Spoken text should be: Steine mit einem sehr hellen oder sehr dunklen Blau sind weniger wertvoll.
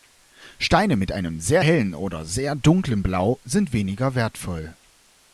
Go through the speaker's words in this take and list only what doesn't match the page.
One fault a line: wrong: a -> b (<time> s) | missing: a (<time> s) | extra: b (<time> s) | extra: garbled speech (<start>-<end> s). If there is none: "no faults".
no faults